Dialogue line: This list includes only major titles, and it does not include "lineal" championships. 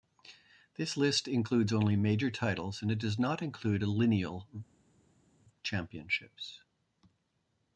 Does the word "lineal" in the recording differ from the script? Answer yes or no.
no